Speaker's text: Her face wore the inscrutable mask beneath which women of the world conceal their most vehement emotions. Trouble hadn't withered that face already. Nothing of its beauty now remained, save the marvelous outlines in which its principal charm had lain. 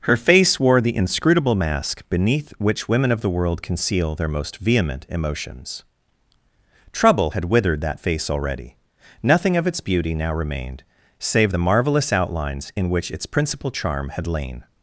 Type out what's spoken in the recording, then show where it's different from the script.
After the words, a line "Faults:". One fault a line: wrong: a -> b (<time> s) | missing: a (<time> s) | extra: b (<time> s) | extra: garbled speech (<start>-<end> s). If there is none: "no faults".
Her face wore the inscrutable mask beneath which women of the world conceal their most vehement emotions. Trouble had withered that face already. Nothing of its beauty now remained, save the marvelous outlines in which its principal charm had lain.
Faults:
wrong: hadn't -> had (7.3 s)